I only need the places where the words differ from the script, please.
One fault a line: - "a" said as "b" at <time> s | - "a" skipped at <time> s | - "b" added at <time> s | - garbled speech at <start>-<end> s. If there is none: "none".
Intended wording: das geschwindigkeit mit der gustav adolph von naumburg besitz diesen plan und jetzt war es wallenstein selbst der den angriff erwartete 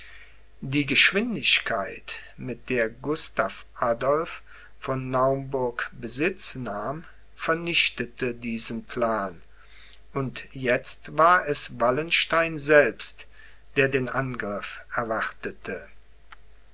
- "das" said as "die" at 0.6 s
- "nahm vernichtete" added at 6.5 s